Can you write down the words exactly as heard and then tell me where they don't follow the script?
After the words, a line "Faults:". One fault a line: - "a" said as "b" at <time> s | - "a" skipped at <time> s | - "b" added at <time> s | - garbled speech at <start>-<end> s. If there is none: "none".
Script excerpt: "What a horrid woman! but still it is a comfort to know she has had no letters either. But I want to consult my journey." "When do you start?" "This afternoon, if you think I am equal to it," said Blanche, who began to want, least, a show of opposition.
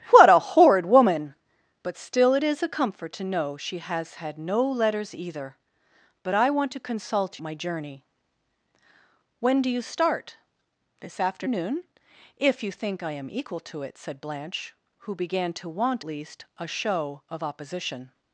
"What a horrid woman! but still it is a comfort to know she has had no letters either. But I want to consult my journey." "When do you start?" "This afternoon, if you think I am equal to it," said Blanche, who began to want, least, a show of opposition.
Faults:
none